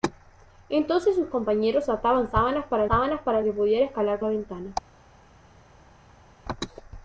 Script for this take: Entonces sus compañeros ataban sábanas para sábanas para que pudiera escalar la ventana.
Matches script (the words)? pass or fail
pass